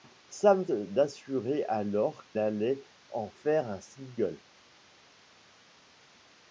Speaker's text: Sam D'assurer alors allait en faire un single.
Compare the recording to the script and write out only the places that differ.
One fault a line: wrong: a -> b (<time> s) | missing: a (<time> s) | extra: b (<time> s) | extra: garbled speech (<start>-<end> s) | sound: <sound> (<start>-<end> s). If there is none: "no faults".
no faults